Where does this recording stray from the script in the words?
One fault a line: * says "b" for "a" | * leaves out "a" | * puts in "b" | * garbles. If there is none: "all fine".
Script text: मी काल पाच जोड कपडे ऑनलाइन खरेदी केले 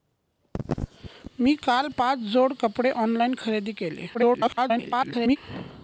* garbles